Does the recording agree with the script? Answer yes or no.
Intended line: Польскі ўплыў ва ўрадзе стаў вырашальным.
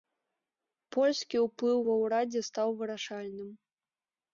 yes